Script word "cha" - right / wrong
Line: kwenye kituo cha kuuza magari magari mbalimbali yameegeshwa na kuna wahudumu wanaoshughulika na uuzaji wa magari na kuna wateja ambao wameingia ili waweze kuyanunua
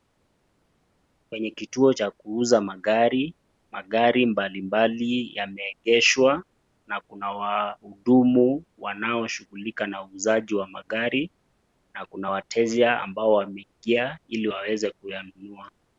right